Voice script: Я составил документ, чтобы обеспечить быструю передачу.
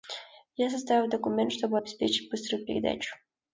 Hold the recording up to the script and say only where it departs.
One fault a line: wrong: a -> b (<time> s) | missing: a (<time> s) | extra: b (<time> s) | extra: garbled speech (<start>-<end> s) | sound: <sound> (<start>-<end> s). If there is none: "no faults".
no faults